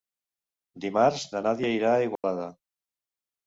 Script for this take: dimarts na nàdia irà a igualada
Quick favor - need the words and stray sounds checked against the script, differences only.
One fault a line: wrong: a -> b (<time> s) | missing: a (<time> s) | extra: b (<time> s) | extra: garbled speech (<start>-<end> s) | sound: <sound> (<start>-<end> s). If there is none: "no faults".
sound: dropout (2.2-2.2 s)